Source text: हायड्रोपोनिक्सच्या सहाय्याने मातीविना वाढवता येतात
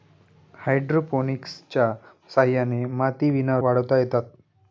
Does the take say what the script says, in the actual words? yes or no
yes